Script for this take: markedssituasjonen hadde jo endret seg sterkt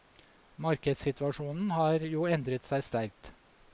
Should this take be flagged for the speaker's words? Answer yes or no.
yes